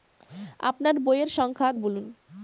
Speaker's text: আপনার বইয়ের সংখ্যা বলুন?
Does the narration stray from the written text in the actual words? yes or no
no